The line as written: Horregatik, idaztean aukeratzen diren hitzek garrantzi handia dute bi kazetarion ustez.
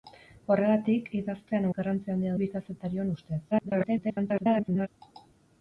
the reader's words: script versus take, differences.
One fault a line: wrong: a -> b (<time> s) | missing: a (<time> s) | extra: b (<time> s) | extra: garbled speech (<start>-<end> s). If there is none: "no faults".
missing: aukeratzen diren hitzek (1.7 s)
missing: dute (2.4 s)
extra: garbled speech (3.5-4.9 s)